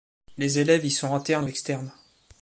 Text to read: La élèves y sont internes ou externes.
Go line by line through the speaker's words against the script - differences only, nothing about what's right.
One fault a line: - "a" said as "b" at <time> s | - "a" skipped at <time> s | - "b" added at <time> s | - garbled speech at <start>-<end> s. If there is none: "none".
- "La" said as "Les" at 0.4 s